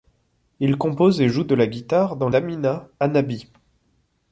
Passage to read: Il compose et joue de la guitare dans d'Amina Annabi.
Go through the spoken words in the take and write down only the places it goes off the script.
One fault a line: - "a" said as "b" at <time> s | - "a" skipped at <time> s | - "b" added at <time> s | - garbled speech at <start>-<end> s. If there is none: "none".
none